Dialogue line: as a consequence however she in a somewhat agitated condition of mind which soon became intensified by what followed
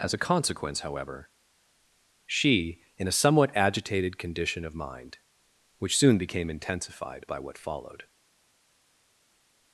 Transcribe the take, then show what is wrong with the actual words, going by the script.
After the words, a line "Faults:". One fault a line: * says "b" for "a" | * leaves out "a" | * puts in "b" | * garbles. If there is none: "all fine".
as a consequence however she in a somewhat agitated condition of mind which soon became intensified by what followed
Faults:
all fine